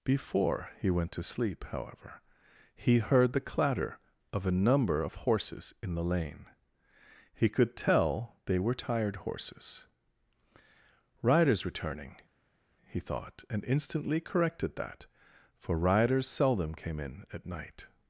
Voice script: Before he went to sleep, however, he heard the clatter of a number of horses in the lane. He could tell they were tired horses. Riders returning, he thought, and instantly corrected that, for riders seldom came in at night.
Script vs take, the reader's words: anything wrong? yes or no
no